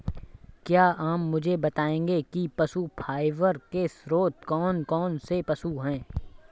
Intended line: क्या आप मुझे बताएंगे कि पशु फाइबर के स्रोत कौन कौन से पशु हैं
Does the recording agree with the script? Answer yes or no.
yes